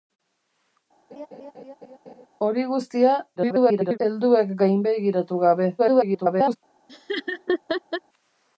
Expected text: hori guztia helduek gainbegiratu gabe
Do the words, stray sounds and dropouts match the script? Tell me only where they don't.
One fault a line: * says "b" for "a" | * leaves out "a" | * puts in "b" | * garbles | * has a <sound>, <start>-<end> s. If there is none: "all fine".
* has a laugh, 1.1-2.3 s
* garbles
* garbles
* has a laugh, 6.9-8.0 s